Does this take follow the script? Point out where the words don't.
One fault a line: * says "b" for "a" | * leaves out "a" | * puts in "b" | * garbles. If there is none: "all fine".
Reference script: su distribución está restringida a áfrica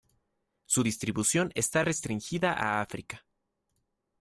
all fine